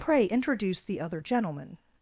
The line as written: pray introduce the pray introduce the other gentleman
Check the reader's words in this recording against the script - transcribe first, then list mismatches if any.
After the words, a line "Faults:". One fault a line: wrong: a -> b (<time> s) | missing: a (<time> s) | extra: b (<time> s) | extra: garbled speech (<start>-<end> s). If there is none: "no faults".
pray introduce the other gentleman
Faults:
missing: pray introduce the (1.0 s)